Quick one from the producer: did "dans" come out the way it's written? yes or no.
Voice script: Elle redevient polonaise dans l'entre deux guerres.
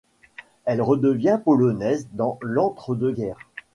yes